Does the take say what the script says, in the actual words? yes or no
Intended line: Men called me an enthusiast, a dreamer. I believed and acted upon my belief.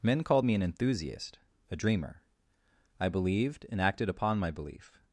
yes